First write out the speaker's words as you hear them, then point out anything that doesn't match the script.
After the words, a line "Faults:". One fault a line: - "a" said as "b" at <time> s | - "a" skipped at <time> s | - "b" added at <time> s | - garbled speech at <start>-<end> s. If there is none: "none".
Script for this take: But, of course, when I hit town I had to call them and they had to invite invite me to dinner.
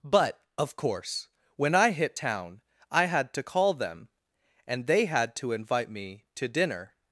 But, of course, when I hit town I had to call them and they had to invite me to dinner.
Faults:
- "invite" skipped at 5.9 s